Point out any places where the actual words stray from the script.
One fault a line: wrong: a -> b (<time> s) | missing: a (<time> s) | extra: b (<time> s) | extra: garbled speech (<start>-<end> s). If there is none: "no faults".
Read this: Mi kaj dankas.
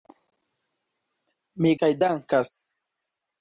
no faults